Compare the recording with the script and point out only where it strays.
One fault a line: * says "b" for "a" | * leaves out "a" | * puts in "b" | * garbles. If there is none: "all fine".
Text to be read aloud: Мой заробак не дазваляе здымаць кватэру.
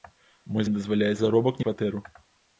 * leaves out "заробак"
* says "заробак" for "здымаць"